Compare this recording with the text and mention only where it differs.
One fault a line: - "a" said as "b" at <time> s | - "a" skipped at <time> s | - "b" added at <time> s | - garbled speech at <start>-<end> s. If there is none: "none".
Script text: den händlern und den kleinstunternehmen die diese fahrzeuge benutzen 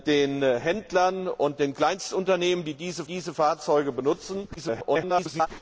- "diese" added at 3.0 s
- garbled speech at 4.6-5.5 s